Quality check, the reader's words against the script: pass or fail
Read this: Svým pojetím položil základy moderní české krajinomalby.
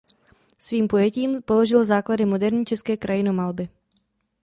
pass